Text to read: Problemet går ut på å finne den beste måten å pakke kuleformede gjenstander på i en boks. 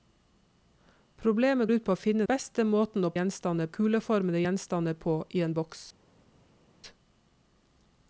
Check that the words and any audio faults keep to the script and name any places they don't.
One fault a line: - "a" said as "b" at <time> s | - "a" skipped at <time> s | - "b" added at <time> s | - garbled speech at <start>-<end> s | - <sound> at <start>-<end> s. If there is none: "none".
- "går" skipped at 1.7 s
- "den" skipped at 2.2 s
- "pakke" said as "gjenstander" at 3.1 s